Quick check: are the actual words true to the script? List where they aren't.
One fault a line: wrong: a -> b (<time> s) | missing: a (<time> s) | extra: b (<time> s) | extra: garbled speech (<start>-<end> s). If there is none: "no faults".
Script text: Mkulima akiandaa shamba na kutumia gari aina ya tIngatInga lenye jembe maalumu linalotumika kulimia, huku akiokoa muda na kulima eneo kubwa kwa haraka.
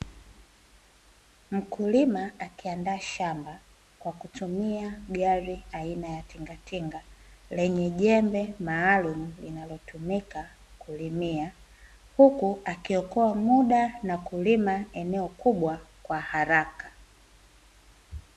wrong: na -> kwa (4.0 s)